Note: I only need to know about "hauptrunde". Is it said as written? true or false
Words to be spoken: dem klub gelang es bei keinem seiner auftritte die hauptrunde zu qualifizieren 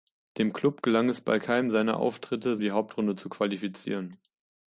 true